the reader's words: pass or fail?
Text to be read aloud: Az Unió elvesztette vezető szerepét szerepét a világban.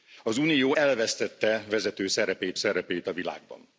pass